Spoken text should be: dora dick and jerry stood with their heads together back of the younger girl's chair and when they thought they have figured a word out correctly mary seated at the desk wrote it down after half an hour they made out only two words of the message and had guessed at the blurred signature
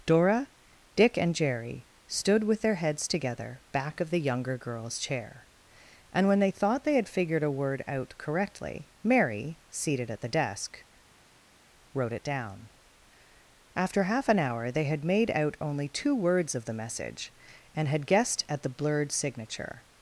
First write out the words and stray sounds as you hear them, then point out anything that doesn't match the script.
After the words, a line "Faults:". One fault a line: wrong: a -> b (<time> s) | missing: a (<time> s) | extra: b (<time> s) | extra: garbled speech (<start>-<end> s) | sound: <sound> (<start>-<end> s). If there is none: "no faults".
dora dick and jerry stood with their heads together back of the younger girl's chair and when they thought they had figured a word out correctly mary seated at the desk wrote it down after half an hour they had made out only two words of the message and had guessed at the blurred signature
Faults:
wrong: have -> had (7.0 s)
extra: had (14.8 s)